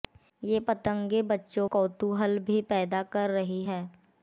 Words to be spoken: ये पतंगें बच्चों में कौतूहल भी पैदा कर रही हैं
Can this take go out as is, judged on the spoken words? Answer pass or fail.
fail